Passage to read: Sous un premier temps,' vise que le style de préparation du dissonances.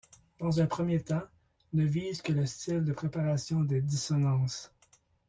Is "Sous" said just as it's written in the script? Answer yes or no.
no